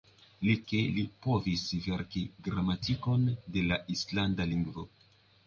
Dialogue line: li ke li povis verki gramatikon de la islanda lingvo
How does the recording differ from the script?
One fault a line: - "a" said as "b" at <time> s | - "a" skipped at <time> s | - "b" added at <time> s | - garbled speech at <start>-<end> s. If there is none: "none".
none